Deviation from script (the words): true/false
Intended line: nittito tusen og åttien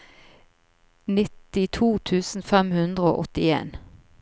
true